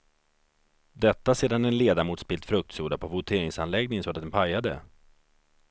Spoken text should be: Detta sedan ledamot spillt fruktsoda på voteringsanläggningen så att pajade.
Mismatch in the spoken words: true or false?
true